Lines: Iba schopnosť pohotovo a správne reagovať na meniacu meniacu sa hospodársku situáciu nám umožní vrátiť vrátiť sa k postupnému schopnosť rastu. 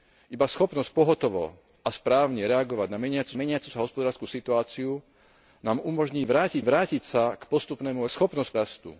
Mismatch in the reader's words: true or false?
false